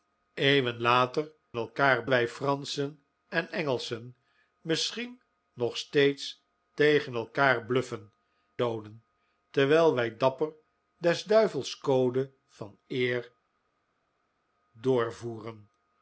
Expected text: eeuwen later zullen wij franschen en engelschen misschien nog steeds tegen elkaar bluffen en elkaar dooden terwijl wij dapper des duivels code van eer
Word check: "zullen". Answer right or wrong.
wrong